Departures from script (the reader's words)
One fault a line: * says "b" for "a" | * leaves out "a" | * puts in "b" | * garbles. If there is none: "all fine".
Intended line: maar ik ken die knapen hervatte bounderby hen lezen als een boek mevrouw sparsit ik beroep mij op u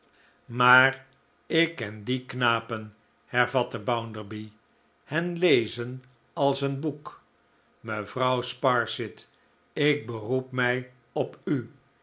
all fine